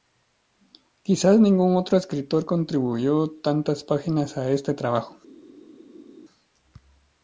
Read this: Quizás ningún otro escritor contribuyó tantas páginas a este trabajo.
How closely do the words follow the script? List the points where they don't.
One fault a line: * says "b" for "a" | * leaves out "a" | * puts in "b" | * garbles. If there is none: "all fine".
all fine